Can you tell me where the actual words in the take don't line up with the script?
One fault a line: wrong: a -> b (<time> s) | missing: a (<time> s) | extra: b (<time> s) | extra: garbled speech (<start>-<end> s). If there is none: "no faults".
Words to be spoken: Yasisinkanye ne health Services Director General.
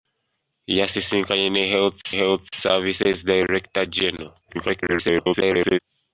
extra: health (2.2 s)
extra: garbled speech (4.4-5.8 s)